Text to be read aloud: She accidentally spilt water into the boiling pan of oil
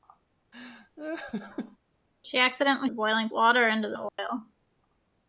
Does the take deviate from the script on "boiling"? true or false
true